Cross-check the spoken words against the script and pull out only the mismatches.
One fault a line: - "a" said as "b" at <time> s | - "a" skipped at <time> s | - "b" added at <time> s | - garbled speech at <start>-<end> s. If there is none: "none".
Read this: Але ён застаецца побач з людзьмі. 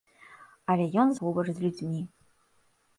- "застаецца" skipped at 1.1 s